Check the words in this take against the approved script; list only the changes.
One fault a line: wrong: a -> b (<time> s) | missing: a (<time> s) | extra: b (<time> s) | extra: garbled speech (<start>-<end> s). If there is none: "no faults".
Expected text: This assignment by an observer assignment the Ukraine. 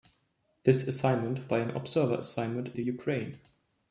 no faults